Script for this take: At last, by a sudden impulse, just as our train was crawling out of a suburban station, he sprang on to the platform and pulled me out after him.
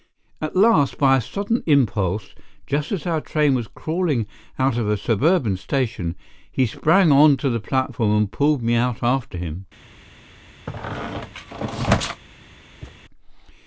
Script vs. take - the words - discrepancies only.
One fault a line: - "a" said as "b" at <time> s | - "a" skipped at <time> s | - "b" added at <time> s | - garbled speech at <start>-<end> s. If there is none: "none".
none